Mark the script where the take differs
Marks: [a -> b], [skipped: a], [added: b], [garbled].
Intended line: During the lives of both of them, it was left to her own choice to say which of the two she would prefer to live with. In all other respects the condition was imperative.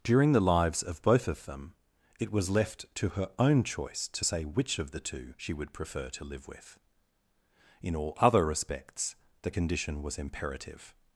During the lives of both of them, it was left to her own choice to say which of the two she would prefer to live with. In all other respects the condition was imperative.